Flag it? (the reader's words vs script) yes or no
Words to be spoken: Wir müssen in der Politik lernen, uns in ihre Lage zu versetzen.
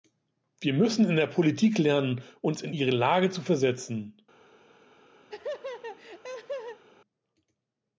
no